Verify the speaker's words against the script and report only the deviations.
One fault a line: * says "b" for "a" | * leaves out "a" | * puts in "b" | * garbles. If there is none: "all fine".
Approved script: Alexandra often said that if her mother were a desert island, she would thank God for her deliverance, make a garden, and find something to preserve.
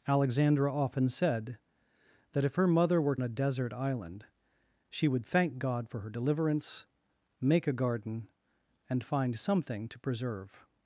all fine